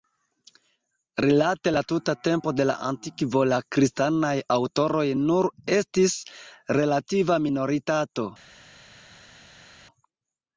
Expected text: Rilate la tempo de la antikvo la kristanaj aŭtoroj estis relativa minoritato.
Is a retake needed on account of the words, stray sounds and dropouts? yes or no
yes